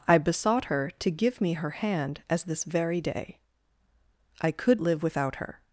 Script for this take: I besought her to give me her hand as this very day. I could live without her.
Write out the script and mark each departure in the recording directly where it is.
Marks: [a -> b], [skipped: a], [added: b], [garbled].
I besought her to give me her hand as this very day. I could live without her.